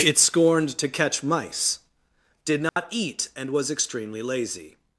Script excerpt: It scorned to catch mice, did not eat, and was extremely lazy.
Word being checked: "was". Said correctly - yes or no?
yes